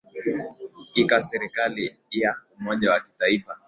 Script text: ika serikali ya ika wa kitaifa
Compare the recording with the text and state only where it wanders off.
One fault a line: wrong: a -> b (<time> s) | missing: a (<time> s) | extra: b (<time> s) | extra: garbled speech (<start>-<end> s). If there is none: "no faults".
wrong: ika -> umoja (2.6 s)